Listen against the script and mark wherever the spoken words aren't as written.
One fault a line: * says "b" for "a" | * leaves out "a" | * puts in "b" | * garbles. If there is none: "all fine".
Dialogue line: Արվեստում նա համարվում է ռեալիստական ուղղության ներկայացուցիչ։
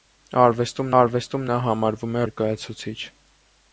* puts in "արվեստում"
* leaves out "ռեալիստական ուղղության"